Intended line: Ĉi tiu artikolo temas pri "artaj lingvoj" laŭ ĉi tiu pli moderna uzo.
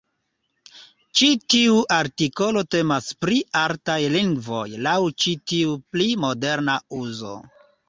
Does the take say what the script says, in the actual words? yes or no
yes